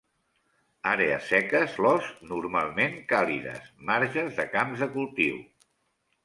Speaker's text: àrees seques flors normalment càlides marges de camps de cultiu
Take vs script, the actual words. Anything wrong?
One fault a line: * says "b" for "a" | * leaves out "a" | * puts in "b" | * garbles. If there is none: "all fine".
all fine